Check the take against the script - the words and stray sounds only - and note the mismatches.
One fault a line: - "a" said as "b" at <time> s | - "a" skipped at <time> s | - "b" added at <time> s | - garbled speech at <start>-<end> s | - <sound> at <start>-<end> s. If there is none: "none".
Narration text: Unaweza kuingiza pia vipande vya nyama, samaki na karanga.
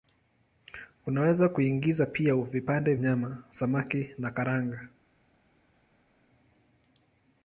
- "vya" skipped at 3.0 s